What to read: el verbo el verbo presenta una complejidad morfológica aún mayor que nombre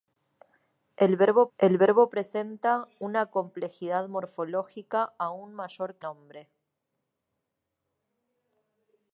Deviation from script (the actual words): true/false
false